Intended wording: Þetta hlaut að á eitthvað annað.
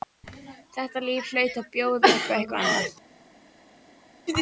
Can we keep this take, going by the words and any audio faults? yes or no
no